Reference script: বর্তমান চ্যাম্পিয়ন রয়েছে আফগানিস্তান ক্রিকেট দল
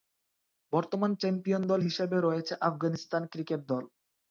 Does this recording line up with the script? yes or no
no